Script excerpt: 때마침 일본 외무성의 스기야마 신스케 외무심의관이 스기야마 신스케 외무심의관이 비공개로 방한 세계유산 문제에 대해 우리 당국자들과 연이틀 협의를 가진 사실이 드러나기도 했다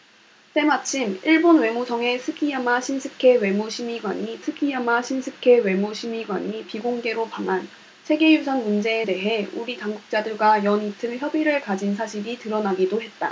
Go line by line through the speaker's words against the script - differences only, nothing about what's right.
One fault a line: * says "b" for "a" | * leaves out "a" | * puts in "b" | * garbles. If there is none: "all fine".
all fine